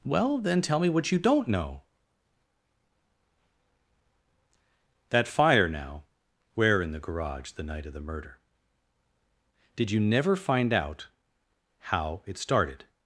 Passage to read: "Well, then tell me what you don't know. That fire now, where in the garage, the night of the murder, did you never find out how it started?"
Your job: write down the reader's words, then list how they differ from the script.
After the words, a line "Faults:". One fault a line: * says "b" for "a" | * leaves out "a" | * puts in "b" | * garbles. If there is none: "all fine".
"Well, then tell me what you don't know. That fire now, where in the garage, the night of the murder, did you never find out how it started?"
Faults:
all fine